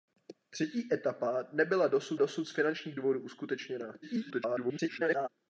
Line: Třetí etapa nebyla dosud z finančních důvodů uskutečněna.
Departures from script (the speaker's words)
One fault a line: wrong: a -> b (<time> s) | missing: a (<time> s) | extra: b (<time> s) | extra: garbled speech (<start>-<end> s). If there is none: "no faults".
extra: dosud (2.1 s)
extra: garbled speech (4.0-5.3 s)